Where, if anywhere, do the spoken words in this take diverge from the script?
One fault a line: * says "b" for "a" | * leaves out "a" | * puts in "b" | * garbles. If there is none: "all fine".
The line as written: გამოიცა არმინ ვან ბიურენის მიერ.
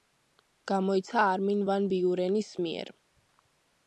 all fine